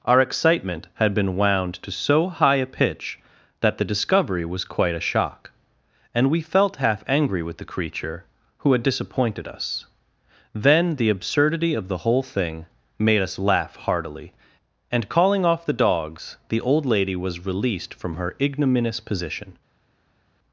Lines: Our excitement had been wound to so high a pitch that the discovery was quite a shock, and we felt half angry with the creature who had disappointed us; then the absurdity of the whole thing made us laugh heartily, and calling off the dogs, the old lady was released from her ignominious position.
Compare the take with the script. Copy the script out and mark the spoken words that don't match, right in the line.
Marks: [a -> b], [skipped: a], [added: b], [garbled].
Our excitement had been wound to so high a pitch that the discovery was quite a shock, and we felt half angry with the creature who had disappointed us; then the absurdity of the whole thing made us laugh heartily, and calling off the dogs, the old lady was released from her ignominious position.